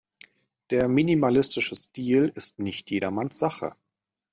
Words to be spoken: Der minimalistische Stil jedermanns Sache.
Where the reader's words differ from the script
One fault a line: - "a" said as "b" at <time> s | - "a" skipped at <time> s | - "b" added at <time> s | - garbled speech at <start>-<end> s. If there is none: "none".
- "ist nicht" added at 2.3 s